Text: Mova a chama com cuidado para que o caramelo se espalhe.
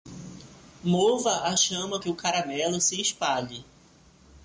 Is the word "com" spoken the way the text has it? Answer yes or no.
no